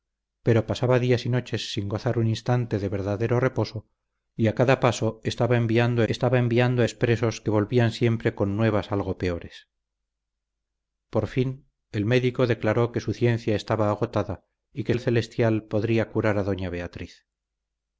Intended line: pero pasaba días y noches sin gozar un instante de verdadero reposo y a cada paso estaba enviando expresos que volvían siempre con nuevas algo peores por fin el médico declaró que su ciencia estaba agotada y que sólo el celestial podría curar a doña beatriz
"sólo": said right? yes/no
no